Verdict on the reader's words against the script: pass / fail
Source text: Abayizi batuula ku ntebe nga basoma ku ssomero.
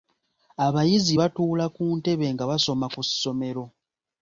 pass